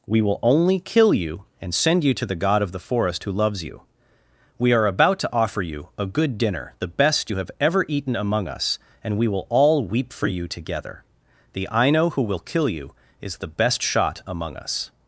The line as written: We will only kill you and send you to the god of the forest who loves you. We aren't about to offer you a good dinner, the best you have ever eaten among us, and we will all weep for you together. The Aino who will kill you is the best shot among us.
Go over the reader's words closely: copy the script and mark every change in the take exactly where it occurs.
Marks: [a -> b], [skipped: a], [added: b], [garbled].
We will only kill you and send you to the god of the forest who loves you. We [aren't -> are] about to offer you a good dinner, the best you have ever eaten among us, and we will all weep for you together. The Aino who will kill you is the best shot among us.